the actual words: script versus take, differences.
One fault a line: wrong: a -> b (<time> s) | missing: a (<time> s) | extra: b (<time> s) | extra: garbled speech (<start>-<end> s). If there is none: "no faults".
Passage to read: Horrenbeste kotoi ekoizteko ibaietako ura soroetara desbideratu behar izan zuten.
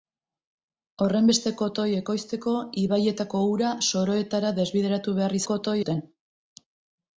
wrong: izan -> kotoi (5.5 s)